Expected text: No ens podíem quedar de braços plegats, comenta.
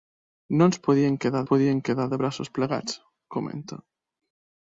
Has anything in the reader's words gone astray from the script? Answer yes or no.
yes